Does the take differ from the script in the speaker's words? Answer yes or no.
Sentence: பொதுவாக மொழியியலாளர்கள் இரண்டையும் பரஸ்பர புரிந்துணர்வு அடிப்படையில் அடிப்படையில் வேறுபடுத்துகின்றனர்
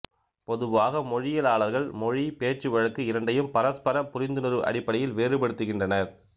yes